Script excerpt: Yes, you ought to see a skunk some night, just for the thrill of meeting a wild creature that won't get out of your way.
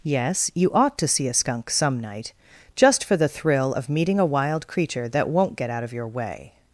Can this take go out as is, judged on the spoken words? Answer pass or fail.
pass